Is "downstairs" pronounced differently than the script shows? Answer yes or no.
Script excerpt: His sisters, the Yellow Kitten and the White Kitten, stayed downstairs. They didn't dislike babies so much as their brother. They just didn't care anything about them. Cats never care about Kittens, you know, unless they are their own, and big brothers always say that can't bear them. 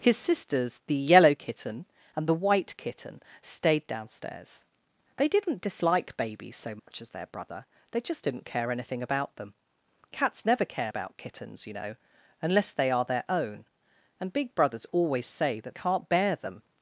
no